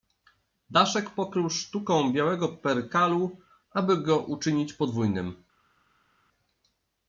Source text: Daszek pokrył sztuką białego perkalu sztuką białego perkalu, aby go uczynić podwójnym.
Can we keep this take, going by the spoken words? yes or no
no